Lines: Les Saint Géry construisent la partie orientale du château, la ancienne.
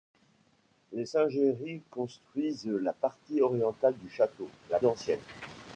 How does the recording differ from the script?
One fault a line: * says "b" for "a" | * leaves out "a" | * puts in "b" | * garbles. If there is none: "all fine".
all fine